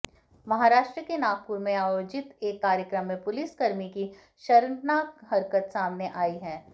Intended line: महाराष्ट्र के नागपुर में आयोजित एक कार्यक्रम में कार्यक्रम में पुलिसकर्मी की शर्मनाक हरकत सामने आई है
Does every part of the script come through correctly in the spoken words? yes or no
no